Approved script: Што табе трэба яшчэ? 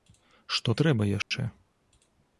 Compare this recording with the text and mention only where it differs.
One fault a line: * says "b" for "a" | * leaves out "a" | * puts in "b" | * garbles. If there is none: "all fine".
* leaves out "табе"